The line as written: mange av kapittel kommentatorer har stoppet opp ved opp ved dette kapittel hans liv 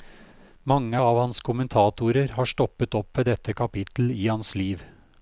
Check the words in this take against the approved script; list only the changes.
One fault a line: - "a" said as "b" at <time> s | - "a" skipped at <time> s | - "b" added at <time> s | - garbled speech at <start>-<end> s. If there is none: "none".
- "kapittel" said as "hans" at 1.2 s
- "opp ved" skipped at 3.3 s
- "i" added at 4.1 s